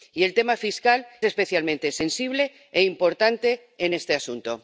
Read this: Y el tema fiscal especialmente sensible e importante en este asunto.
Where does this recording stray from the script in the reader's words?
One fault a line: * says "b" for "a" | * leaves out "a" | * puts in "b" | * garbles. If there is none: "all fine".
all fine